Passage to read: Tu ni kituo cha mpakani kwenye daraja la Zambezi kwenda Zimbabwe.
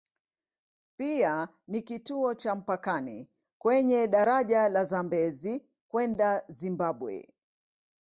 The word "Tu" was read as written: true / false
false